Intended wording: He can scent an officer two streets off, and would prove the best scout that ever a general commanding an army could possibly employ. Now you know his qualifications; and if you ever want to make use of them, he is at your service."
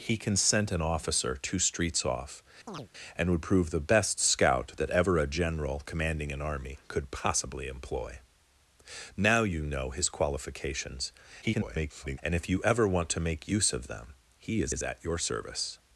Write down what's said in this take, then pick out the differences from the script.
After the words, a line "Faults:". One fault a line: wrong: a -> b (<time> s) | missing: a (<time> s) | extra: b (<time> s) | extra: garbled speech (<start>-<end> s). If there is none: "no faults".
He can scent an officer two streets off, and would prove the best scout that ever a general commanding an army could possibly employ. Now you know his qualifications; [garbled] and if you ever want to make use of them, he is is at your service."
Faults:
extra: garbled speech (11.4-12.2 s)
extra: is (14.7 s)